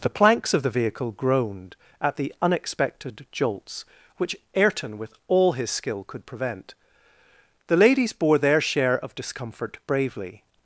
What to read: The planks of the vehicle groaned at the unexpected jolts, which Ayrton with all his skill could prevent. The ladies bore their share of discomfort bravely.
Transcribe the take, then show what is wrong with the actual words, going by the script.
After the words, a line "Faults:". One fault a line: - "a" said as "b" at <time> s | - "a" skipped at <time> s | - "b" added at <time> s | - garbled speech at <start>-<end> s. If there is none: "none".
The planks of the vehicle groaned at the unexpected jolts, which Ayrton with all his skill could prevent. The ladies bore their share of discomfort bravely.
Faults:
none